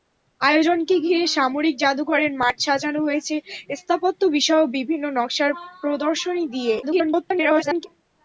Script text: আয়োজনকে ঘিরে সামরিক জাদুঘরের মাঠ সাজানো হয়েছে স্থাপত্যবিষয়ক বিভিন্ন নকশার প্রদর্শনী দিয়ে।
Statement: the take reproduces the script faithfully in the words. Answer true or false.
false